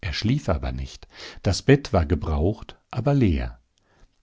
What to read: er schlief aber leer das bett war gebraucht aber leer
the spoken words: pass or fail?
fail